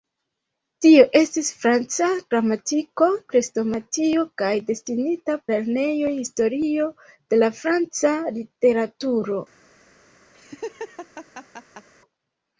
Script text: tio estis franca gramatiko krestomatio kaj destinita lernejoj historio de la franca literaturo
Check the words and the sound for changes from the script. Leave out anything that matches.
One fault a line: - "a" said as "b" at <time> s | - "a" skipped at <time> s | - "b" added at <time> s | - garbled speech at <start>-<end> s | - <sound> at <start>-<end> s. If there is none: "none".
- laugh at 10.3-11.9 s